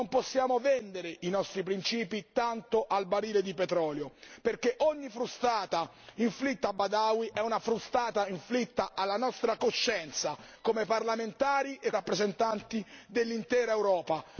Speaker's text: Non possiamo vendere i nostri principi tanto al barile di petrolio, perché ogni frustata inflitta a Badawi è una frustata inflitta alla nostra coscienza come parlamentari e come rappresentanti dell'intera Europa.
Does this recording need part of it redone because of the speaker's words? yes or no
yes